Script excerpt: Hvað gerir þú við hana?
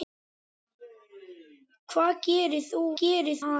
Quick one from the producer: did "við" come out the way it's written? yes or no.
no